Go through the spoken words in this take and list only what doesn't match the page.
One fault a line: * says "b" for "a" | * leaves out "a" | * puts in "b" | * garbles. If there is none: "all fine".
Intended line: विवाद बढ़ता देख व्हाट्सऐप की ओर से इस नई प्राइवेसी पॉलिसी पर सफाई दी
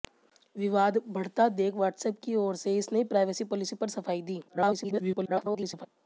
* garbles